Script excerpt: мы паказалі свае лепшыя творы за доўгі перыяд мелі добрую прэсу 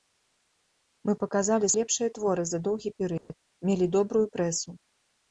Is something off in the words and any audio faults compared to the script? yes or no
yes